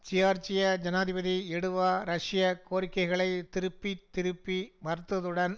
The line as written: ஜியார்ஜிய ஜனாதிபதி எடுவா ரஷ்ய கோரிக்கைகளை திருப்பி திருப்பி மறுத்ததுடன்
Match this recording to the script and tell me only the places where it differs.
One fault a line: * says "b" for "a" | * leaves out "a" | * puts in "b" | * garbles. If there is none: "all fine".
all fine